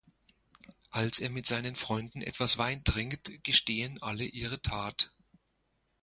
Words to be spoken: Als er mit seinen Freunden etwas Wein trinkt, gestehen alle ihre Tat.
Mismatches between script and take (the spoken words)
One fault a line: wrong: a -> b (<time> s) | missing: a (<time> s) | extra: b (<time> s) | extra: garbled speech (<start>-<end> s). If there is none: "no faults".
no faults